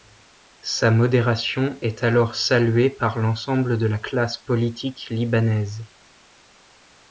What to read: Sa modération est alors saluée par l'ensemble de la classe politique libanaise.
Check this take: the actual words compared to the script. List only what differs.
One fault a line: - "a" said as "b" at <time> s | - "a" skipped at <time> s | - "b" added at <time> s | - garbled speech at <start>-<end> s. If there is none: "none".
none